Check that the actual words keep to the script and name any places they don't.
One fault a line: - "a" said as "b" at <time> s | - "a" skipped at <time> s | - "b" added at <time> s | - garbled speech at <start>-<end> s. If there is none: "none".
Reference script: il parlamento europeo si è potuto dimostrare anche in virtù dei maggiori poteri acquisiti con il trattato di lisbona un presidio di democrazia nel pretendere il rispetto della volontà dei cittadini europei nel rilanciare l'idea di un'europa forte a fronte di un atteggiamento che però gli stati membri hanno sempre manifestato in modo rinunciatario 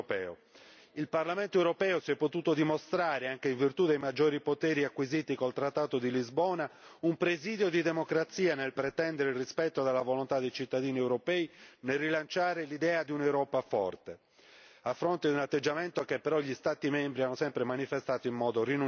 none